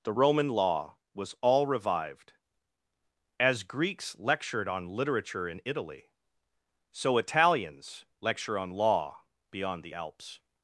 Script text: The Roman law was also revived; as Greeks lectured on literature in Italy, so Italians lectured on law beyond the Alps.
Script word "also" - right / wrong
wrong